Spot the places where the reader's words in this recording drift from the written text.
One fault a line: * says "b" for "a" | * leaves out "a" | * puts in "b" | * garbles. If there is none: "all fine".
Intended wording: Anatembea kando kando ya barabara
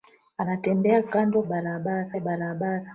* says "barabara" for "kando"